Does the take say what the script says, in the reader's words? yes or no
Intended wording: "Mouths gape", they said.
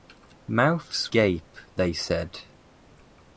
yes